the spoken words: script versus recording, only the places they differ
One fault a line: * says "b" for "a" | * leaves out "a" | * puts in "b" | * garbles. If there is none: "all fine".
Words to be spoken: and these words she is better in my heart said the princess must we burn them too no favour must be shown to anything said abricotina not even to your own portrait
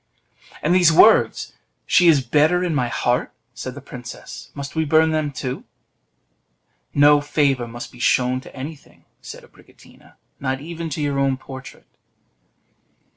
all fine